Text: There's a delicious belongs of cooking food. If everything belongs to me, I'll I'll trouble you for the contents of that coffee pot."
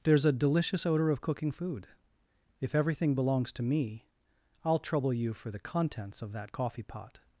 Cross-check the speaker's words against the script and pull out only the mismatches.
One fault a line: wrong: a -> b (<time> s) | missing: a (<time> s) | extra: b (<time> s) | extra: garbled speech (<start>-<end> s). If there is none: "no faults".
wrong: belongs -> odor (0.8 s)
missing: I'll (4.8 s)